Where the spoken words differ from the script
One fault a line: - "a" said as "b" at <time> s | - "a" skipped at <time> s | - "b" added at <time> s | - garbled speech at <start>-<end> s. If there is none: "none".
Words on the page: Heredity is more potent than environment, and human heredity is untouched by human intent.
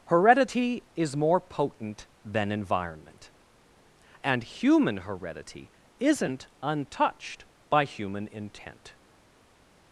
- "is" said as "isn't" at 6.0 s